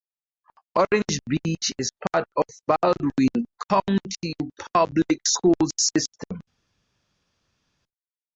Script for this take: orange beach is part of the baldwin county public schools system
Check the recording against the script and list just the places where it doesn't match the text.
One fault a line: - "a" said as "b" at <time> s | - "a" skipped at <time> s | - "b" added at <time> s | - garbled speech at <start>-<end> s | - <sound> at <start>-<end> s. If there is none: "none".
- "the" skipped at 2.5 s